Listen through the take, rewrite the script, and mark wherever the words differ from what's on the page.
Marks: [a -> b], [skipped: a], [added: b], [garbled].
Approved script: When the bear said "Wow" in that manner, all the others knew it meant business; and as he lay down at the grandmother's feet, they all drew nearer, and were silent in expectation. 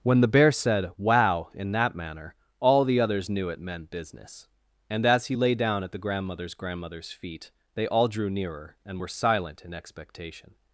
When the bear said "Wow" in that manner, all the others knew it meant business; and as he lay down at the grandmother's [added: grandmother's] feet, they all drew nearer, and were silent in expectation.